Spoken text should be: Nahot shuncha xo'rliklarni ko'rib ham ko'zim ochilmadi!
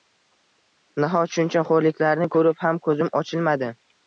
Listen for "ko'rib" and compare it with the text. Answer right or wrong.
right